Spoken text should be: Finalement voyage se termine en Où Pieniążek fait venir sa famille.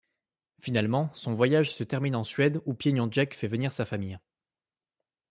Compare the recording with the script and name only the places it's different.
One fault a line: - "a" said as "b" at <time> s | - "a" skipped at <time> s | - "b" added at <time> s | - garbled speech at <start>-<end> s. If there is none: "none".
- "son" added at 1.1 s
- "Suède" added at 2.2 s